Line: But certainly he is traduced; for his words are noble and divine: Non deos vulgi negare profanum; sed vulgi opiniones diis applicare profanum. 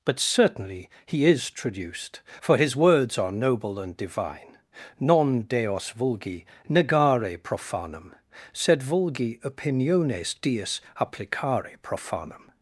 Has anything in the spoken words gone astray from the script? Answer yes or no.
no